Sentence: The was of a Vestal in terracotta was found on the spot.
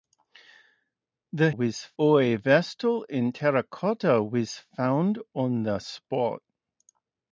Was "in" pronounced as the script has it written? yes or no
yes